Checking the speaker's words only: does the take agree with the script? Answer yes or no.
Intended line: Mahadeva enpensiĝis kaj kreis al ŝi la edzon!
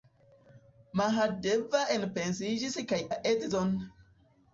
no